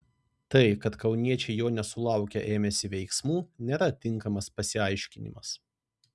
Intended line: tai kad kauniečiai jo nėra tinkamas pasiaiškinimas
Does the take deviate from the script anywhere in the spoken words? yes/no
yes